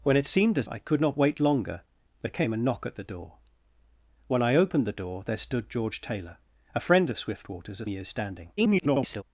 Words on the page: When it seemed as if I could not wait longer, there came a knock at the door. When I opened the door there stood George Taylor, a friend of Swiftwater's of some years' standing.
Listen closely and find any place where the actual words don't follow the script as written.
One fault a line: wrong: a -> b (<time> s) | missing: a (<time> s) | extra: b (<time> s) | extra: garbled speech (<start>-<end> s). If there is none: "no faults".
missing: if (0.7 s)
missing: some (7.9 s)
extra: garbled speech (8.6-9.2 s)